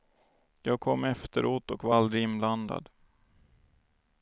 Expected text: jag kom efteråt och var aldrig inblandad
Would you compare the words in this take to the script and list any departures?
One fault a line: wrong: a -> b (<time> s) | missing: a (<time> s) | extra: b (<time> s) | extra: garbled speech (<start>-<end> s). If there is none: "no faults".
no faults